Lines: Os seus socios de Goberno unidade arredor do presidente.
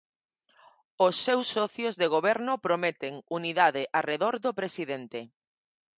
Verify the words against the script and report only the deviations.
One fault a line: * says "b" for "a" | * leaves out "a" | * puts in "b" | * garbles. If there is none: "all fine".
* puts in "prometen"